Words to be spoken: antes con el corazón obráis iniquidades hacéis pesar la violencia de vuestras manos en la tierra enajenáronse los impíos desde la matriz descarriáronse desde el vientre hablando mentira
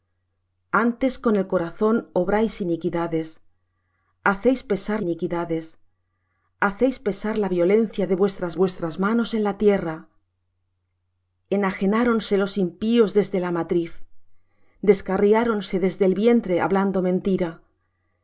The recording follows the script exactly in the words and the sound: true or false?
false